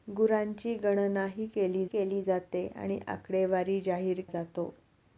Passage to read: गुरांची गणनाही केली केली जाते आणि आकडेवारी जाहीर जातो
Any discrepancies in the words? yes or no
no